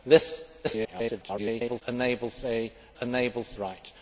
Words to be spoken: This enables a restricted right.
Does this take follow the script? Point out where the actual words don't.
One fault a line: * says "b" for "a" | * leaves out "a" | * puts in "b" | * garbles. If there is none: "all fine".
* garbles
* says "enables" for "restricted"